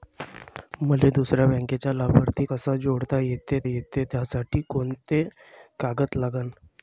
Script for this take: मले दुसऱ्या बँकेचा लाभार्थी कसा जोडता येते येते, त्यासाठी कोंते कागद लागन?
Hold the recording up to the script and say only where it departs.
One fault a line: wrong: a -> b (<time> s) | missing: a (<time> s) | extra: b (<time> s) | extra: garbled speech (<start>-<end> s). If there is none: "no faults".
no faults